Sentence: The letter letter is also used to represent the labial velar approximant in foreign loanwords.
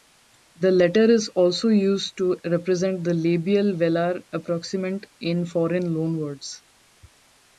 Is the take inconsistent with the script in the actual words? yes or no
yes